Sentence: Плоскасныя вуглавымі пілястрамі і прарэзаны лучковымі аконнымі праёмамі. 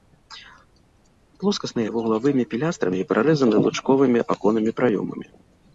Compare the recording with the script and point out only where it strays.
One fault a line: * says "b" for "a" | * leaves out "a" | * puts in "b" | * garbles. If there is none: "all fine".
all fine